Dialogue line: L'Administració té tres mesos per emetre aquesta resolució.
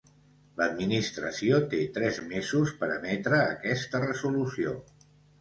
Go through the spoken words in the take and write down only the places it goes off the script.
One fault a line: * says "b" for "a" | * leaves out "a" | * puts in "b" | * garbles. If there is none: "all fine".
all fine